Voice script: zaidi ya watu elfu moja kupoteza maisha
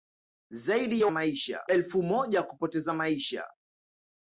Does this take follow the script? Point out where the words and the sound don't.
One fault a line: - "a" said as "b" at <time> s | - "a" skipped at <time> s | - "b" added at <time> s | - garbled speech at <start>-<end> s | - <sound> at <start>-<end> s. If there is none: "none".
- "watu" said as "maisha" at 1.1 s